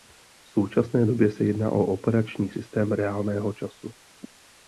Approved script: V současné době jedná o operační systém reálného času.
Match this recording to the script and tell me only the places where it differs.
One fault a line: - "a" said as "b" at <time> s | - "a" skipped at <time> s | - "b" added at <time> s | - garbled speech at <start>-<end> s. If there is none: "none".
- "se" added at 1.3 s